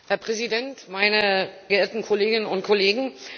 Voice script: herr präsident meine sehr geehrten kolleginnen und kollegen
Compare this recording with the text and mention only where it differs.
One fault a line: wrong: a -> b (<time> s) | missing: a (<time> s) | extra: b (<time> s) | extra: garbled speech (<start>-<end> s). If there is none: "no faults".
missing: sehr (1.5 s)